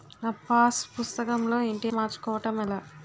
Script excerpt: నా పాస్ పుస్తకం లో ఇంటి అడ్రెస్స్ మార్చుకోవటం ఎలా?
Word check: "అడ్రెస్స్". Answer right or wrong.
wrong